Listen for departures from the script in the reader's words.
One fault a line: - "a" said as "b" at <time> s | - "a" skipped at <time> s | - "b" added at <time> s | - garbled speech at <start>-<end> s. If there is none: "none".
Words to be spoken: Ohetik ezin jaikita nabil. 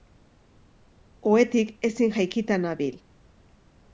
none